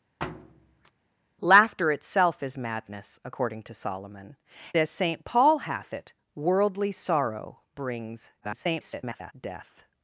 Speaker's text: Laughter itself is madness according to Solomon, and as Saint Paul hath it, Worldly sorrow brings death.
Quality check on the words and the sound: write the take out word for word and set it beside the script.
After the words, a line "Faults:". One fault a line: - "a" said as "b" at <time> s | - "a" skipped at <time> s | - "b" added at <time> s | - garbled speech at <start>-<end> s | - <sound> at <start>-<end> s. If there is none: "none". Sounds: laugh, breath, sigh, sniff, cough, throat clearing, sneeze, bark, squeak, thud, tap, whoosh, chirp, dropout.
Laughter itself is madness according to Solomon, as Saint Paul hath it, Worldly sorrow brings [garbled] death.
Faults:
- thud at 0.2-0.9 s
- "and" skipped at 4.4 s
- garbled speech at 8.4-9.3 s